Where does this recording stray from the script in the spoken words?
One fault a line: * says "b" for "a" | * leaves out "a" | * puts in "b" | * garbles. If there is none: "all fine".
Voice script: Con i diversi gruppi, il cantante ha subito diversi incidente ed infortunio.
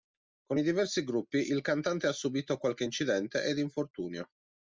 * says "qualche" for "diversi"